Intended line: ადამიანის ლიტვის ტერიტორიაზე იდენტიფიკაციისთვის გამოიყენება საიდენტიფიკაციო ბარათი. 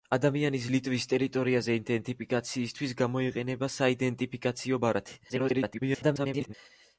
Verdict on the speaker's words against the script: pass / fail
fail